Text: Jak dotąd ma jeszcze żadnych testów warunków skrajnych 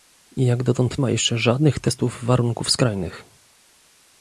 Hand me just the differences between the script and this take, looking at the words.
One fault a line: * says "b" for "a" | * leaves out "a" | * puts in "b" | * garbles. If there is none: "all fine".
all fine